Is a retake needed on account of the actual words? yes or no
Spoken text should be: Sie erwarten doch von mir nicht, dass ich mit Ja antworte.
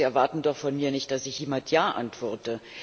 no